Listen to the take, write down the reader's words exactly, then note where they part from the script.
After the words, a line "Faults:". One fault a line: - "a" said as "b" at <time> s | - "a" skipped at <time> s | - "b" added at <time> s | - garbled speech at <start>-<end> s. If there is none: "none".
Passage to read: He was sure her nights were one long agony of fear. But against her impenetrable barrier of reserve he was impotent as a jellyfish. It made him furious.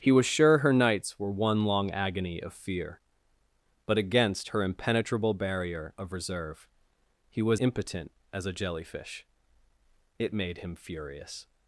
He was sure her nights were one long agony of fear. But against her impenetrable barrier of reserve he was impotent as a jellyfish. It made him furious.
Faults:
none